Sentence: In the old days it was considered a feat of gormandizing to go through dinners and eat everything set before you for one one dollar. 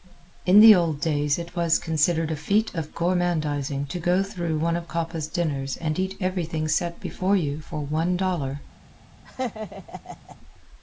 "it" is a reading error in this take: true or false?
false